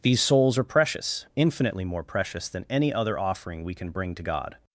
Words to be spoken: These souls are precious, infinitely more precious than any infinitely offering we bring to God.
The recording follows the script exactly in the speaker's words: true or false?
false